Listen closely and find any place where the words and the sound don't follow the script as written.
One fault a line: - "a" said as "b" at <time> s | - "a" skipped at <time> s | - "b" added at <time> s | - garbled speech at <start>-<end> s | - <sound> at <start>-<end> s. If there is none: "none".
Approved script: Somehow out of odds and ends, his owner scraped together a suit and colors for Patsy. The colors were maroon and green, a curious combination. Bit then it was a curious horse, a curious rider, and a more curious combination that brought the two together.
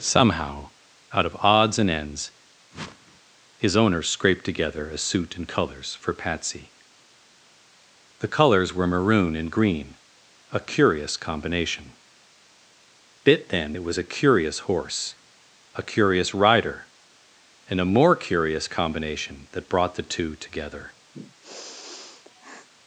- whoosh at 2.7-3.2 s
- sniff at 21.1-22.7 s